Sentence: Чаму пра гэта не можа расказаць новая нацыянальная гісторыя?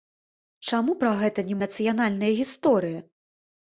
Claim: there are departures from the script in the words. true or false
true